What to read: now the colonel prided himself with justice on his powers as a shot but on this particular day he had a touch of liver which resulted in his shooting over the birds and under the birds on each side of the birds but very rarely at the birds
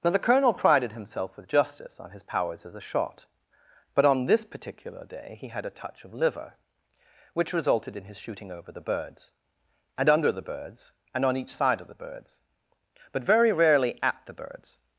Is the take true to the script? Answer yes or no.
no